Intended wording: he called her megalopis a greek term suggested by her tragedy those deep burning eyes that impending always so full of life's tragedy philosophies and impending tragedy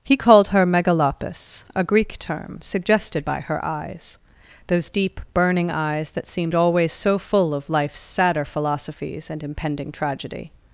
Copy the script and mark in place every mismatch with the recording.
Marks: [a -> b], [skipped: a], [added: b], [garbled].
he called her megalopis a greek term suggested by her [tragedy -> eyes] those deep burning eyes that [impending -> seemed] always so full of life's [tragedy -> sadder] philosophies and impending tragedy